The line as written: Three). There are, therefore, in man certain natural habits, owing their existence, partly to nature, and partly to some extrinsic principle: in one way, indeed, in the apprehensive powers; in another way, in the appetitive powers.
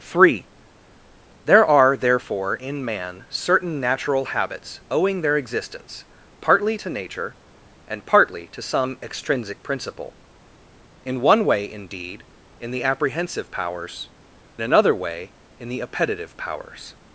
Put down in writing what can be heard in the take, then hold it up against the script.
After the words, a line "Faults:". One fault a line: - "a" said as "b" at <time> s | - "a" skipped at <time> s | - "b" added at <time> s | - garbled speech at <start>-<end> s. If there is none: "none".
Three). There are, therefore, in man certain natural habits, owing their existence, partly to nature, and partly to some extrinsic principle: in one way, indeed, in the apprehensive powers; another way, in the appetitive powers.
Faults:
- "in" skipped at 14.1 s